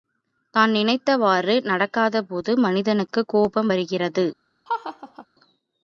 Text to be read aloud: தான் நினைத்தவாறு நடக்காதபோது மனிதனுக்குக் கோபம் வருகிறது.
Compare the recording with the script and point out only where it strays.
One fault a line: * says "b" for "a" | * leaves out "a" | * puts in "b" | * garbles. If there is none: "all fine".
all fine